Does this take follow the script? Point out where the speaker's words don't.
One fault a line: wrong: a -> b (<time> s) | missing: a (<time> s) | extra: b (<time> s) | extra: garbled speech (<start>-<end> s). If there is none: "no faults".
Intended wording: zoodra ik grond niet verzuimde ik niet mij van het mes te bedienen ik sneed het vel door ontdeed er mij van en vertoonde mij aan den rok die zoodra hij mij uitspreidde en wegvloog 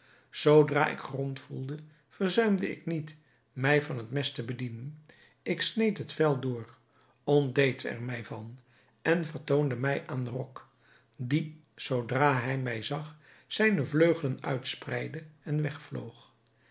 wrong: niet -> voelde (1.4 s)
extra: zag zijne vleugelen (12.8 s)